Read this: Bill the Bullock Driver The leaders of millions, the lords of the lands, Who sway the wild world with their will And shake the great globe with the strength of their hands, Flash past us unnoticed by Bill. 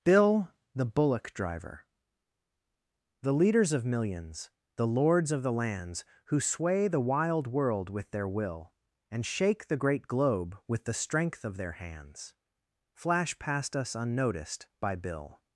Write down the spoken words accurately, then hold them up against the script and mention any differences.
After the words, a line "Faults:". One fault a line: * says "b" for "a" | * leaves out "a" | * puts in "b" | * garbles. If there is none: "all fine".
Bill the Bullock Driver The leaders of millions, the lords of the lands, Who sway the wild world with their will And shake the great globe with the strength of their hands, Flash past us unnoticed by Bill.
Faults:
all fine